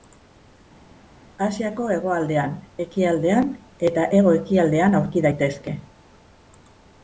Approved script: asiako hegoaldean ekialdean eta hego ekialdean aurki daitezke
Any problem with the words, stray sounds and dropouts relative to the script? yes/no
no